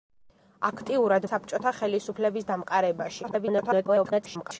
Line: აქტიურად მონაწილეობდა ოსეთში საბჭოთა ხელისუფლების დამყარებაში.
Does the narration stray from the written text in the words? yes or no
yes